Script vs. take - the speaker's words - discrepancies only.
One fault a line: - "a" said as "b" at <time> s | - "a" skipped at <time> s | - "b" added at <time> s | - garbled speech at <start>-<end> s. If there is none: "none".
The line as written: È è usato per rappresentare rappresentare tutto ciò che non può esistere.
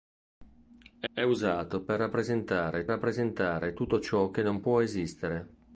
none